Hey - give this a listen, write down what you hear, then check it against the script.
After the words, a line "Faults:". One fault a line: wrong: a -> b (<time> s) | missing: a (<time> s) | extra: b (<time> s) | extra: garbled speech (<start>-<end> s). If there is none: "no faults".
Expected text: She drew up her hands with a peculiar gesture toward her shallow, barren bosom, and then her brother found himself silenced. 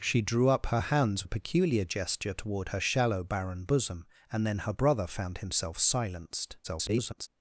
She drew up her hands a peculiar gesture toward her shallow, barren bosom, and then her brother found himself silenced. [garbled]
Faults:
missing: with (1.3 s)
extra: garbled speech (6.6-7.3 s)